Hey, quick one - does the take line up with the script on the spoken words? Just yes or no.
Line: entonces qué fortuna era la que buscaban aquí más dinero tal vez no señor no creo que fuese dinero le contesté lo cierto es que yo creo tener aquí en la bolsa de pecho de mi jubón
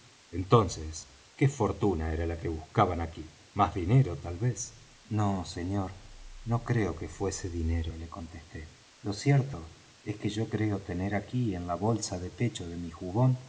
yes